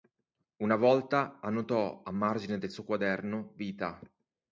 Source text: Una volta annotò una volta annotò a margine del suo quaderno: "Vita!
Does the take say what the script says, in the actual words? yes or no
no